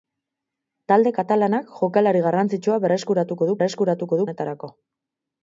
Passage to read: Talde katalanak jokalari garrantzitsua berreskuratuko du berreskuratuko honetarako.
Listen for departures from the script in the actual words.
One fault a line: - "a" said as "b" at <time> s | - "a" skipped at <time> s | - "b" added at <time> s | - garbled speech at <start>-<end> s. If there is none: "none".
none